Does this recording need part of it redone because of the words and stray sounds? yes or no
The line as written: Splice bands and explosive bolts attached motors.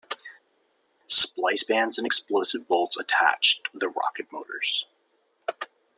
yes